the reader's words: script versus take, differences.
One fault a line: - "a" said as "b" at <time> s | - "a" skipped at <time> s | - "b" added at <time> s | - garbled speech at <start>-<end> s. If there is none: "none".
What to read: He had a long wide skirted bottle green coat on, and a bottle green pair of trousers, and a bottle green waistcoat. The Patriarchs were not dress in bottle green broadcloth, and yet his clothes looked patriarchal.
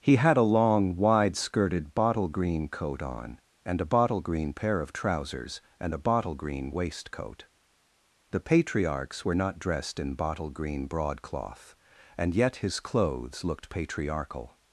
- "dress" said as "dressed" at 9.6 s